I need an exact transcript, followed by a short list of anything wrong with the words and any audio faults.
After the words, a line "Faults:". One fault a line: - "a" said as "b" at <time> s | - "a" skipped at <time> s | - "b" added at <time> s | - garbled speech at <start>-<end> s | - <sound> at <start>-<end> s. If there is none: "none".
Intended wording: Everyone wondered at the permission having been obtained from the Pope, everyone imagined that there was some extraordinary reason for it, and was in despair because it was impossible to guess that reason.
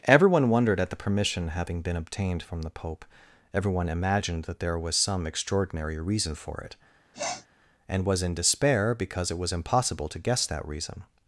Everyone wondered at the permission having been obtained from the Pope, everyone imagined that there was some extraordinary reason for it, and was in despair because it was impossible to guess that reason.
Faults:
- sniff at 7.1-7.5 s